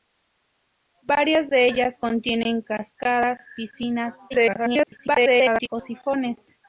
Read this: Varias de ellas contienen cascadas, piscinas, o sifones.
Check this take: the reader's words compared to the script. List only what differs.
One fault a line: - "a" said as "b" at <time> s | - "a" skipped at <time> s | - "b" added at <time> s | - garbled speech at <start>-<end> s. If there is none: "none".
- garbled speech at 4.3-5.7 s